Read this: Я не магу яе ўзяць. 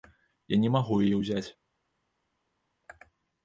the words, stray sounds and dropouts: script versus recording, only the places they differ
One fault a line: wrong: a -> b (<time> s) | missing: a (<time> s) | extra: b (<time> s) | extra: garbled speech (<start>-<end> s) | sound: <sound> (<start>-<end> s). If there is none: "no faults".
no faults